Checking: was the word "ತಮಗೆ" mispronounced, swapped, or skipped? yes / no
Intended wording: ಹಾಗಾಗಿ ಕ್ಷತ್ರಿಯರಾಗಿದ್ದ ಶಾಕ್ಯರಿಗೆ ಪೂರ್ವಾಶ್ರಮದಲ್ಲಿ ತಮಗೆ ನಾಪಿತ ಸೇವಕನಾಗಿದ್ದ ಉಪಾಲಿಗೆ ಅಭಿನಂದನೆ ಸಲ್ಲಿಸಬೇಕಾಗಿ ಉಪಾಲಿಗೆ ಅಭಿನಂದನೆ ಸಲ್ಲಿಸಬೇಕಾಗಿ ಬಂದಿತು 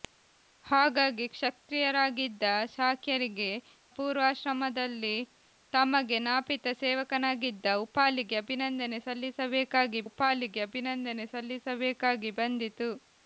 no